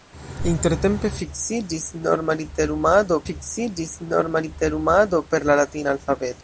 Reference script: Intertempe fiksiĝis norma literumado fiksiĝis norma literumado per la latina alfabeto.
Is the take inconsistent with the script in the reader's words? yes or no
no